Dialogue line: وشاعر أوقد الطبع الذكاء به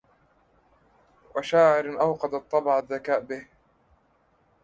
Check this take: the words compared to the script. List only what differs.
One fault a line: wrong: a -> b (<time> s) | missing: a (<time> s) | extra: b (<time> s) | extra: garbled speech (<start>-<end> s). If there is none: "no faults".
no faults